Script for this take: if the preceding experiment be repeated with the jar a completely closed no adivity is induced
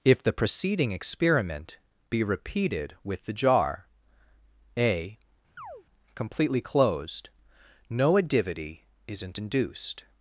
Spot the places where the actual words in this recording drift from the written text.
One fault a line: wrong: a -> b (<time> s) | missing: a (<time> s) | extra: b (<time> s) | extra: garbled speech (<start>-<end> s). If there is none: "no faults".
wrong: is -> isn't (9.1 s)